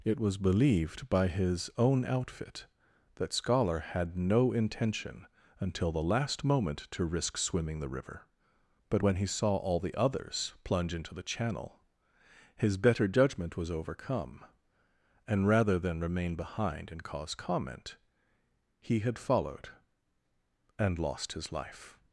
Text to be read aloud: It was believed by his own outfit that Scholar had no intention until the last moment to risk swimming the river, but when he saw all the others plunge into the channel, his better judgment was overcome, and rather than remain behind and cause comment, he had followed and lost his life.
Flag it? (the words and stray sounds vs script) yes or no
no